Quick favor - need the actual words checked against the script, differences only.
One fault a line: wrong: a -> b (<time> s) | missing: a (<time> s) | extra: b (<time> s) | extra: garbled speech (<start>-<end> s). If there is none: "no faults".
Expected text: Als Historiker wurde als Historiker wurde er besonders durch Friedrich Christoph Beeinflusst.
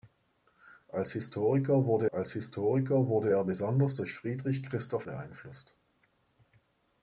no faults